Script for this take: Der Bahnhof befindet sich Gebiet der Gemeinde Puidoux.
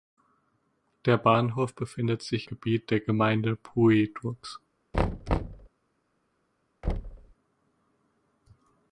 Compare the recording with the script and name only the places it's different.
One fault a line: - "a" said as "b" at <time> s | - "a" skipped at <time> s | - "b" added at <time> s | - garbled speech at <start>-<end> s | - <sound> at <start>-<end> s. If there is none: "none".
- thud at 4.9-5.7 s
- thud at 6.8-7.3 s